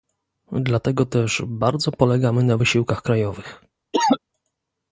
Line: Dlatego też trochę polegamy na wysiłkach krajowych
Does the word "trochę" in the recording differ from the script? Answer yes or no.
yes